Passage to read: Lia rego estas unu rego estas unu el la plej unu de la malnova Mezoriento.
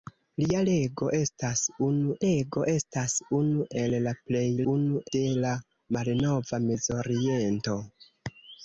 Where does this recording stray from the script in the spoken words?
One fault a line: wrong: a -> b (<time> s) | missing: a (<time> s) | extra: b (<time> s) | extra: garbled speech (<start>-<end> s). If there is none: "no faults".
no faults